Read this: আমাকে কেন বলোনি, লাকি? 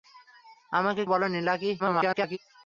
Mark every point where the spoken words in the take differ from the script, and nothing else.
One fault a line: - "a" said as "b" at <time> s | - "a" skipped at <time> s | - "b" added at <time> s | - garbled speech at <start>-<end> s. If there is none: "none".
- "কেন" skipped at 1.0 s
- garbled speech at 1.8-2.4 s